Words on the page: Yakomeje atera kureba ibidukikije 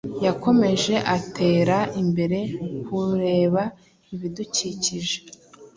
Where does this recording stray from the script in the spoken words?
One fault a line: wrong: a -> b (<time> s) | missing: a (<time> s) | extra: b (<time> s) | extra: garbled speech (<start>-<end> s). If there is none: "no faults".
extra: imbere (2.0 s)